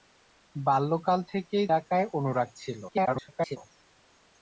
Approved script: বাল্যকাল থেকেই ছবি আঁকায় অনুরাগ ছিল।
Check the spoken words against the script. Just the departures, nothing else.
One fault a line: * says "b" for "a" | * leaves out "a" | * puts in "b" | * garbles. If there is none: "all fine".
* leaves out "ছবি"
* garbles